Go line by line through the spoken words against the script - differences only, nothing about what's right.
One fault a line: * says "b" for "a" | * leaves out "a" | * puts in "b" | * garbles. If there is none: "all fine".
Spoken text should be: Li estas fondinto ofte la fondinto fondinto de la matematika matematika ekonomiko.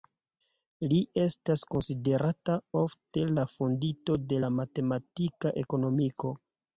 * says "konsiderata" for "fondinto"
* leaves out "fondinto"
* leaves out "matematika"